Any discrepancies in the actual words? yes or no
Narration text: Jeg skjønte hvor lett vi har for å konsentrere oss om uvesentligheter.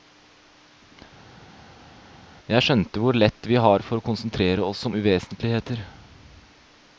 no